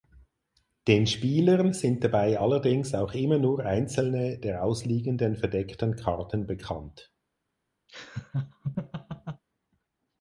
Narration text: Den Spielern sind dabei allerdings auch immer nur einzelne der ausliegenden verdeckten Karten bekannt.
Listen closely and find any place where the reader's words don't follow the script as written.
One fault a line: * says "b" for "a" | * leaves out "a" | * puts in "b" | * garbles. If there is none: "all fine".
all fine